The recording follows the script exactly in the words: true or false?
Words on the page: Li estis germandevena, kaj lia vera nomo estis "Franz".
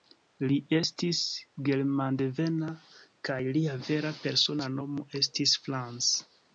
false